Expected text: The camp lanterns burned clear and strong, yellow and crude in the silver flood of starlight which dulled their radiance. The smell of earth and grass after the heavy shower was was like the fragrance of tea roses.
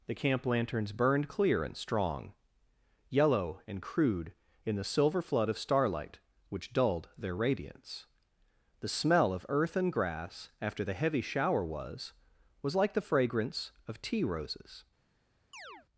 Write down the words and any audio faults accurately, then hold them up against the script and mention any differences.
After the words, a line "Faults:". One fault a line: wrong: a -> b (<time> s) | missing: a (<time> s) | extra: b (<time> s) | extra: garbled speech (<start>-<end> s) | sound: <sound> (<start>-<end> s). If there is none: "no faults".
The camp lanterns burned clear and strong, yellow and crude in the silver flood of starlight which dulled their radiance. The smell of earth and grass after the heavy shower was was like the fragrance of tea roses.
Faults:
sound: chirp (15.5-15.9 s)